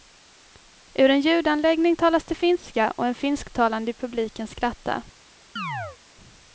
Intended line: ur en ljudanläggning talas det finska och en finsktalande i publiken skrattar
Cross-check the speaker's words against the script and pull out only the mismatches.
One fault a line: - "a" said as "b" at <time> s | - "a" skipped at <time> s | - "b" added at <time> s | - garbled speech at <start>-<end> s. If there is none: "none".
none